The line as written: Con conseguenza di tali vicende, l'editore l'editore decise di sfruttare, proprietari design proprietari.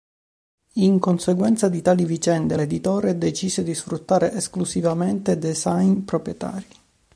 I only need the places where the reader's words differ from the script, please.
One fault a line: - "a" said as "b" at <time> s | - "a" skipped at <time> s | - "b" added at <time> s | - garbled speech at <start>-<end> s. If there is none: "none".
- "Con" said as "In" at 0.8 s
- "l'editore" skipped at 3.2 s
- "proprietari" said as "esclusivamente" at 4.3 s